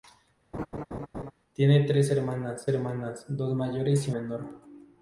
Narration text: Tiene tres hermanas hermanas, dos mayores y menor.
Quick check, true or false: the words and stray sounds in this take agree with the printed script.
false